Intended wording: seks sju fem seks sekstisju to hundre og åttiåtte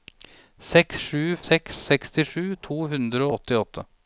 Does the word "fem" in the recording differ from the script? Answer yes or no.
yes